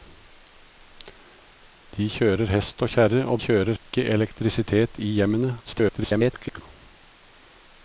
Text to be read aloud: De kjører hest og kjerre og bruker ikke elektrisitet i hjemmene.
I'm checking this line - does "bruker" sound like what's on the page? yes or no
no